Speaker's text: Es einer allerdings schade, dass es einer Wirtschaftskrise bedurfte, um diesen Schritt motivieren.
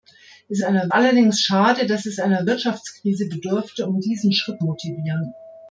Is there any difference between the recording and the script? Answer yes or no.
no